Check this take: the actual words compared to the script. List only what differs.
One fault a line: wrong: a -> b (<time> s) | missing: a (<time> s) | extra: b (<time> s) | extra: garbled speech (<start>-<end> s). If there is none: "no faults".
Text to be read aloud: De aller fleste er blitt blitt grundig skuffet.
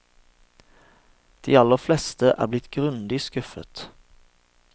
missing: blitt (2.7 s)